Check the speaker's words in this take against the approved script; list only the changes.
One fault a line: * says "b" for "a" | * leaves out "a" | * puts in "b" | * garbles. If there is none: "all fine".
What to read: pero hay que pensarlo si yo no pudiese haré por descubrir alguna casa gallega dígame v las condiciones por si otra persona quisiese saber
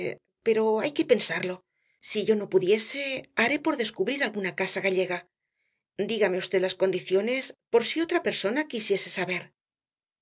all fine